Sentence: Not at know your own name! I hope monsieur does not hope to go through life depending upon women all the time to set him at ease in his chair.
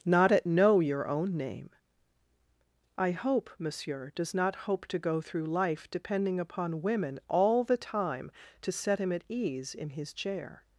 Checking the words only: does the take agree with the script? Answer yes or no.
yes